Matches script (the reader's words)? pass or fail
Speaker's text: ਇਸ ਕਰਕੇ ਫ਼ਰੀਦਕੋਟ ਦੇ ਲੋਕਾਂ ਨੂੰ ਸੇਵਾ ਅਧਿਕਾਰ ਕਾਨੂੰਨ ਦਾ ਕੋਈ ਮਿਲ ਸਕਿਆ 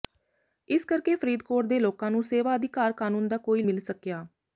pass